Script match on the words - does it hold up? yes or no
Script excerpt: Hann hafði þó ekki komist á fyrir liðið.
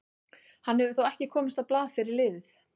no